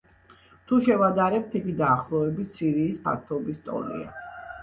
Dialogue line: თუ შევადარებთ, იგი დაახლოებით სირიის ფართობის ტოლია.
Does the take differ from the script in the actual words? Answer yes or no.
no